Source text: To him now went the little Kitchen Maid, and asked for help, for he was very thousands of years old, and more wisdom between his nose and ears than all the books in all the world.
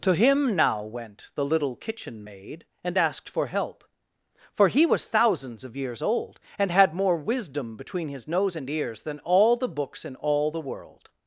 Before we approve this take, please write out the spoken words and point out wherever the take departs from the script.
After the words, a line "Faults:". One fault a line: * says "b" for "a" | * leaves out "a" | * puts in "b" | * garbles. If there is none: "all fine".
To him now went the little Kitchen Maid, and asked for help, for he was thousands of years old, and had more wisdom between his nose and ears than all the books in all the world.
Faults:
* leaves out "very"
* puts in "had"